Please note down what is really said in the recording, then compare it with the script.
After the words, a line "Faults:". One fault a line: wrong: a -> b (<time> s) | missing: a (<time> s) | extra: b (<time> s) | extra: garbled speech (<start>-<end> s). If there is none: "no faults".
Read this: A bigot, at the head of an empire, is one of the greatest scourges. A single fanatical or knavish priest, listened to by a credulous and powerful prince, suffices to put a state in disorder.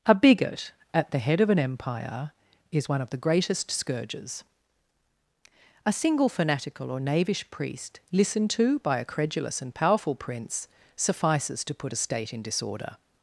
A bigot, at the head of an empire, is one of the greatest scourges. A single fanatical or knavish priest, listened to by a credulous and powerful prince, suffices to put a state in disorder.
Faults:
no faults